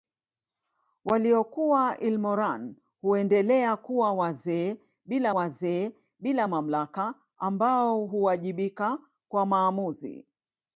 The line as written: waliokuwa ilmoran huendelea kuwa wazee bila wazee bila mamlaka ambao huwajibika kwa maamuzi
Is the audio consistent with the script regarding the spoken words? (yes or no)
yes